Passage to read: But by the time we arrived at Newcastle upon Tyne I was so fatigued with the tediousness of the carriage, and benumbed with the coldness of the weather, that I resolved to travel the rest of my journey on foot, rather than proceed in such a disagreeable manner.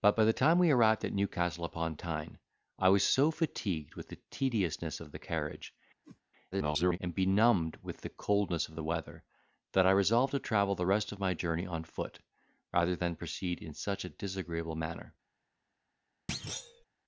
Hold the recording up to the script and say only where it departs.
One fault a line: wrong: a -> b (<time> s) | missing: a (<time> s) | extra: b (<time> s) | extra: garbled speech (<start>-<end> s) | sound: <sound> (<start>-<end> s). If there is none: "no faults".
sound: whoosh (6.0-6.2 s)
extra: garbled speech (6.5-7.0 s)
sound: thud (16.3-16.8 s)